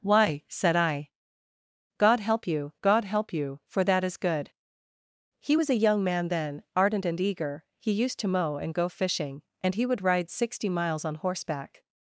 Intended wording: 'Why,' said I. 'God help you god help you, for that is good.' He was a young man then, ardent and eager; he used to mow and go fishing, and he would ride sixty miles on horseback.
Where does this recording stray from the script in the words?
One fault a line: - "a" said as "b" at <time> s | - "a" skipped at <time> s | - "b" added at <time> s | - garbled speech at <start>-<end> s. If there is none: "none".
none